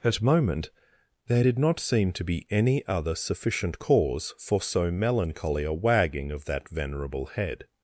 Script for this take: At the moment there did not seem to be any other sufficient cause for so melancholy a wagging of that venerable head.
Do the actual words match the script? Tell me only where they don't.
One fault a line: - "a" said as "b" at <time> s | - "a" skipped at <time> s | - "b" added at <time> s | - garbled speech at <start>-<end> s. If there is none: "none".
- "the" skipped at 0.2 s